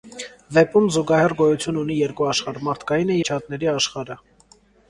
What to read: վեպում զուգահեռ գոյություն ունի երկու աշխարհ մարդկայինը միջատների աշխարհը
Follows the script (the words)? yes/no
yes